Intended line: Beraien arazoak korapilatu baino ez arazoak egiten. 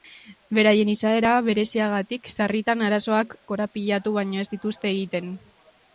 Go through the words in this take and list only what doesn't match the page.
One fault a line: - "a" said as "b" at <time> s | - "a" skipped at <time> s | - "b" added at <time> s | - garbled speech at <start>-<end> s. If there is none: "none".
- "izaera bereziagatik sarritan" added at 0.9 s
- "arazoak" said as "dituzte" at 4.6 s